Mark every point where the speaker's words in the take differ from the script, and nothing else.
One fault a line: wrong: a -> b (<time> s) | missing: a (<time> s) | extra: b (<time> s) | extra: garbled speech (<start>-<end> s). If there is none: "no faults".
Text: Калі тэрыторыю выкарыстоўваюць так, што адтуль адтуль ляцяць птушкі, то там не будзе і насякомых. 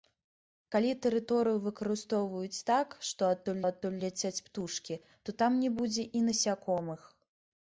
no faults